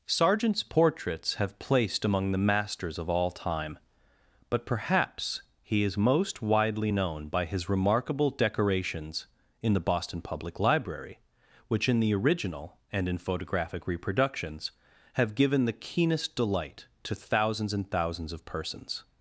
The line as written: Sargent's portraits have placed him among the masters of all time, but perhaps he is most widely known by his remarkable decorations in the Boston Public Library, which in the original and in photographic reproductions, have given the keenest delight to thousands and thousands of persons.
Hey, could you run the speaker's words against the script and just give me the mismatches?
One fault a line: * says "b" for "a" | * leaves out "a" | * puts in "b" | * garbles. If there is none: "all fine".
* leaves out "him"